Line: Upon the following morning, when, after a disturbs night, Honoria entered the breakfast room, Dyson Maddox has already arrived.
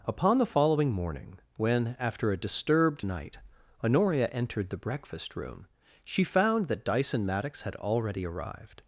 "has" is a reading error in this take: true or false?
true